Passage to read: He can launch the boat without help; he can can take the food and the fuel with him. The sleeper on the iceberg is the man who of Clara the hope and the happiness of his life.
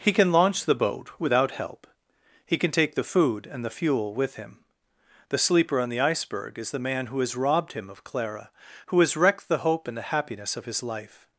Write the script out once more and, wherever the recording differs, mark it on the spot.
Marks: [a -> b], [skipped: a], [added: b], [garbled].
He can launch the boat without help; he can [skipped: can] take the food and the fuel with him. The sleeper on the iceberg is the man who [added: has robbed him] of Clara [added: who has wrecked] the hope and the happiness of his life.